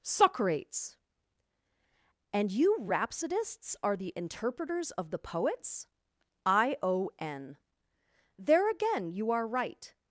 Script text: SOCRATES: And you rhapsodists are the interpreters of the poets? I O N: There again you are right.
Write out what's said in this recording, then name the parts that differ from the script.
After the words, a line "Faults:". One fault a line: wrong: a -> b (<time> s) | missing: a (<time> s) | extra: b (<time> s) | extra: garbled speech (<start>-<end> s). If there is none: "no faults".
SOCRATES: And you rhapsodists are the interpreters of the poets? I O N: There again you are right.
Faults:
no faults